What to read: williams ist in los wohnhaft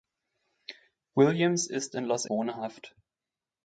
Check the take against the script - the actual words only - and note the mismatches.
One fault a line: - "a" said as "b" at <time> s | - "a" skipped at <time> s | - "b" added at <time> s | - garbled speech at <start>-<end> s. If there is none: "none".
none